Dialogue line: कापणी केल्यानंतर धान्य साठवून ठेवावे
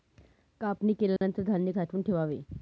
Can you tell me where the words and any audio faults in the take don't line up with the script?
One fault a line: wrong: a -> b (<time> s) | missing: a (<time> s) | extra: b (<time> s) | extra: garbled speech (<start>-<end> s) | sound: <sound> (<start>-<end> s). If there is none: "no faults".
sound: dropout (1.2-1.2 s)